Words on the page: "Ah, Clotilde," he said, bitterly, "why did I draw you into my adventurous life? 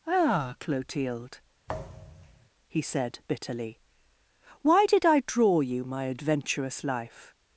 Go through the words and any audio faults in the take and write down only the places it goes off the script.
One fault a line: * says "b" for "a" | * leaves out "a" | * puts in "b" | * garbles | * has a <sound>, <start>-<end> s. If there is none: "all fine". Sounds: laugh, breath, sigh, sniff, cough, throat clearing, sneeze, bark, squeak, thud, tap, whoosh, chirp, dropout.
* has a thud, 1.7-2.5 s
* leaves out "into"